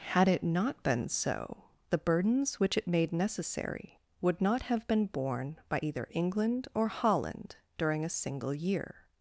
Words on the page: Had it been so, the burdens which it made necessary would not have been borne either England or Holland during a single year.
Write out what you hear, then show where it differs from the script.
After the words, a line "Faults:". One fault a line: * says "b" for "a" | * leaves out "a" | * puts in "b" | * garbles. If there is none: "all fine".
Had it not been so, the burdens which it made necessary would not have been borne by either England or Holland during a single year.
Faults:
* puts in "not"
* puts in "by"